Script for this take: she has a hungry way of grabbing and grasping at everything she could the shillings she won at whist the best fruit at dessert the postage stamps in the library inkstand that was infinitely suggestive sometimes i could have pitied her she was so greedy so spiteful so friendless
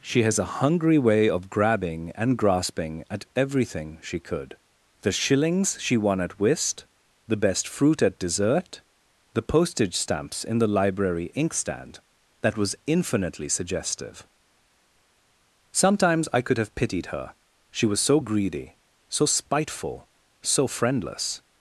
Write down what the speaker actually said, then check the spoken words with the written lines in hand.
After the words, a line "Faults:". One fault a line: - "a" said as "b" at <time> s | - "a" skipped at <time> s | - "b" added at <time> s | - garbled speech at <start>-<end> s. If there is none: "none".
she has a hungry way of grabbing and grasping at everything she could the shillings she won at whist the best fruit at dessert the postage stamps in the library inkstand that was infinitely suggestive sometimes i could have pitied her she was so greedy so spiteful so friendless
Faults:
none